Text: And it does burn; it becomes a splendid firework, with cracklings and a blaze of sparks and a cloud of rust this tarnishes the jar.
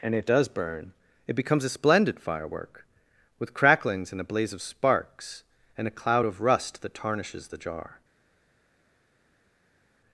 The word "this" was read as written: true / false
false